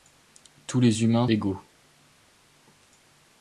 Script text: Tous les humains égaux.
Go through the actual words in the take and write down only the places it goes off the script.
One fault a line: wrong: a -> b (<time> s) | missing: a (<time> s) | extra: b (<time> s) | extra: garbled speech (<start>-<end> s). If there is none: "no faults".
no faults